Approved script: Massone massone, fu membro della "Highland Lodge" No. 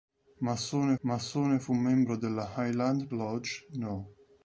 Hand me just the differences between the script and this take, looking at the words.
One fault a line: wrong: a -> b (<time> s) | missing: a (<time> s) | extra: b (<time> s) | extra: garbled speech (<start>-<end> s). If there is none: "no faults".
no faults